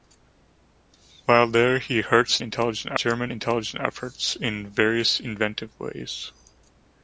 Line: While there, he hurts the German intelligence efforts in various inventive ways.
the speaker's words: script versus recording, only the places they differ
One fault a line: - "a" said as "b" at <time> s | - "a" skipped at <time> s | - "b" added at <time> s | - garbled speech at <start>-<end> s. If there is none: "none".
- "the" said as "intelligence" at 2.4 s